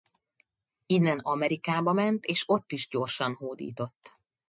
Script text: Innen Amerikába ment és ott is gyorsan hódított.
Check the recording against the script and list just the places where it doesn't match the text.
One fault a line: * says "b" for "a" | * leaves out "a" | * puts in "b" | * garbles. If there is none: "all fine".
all fine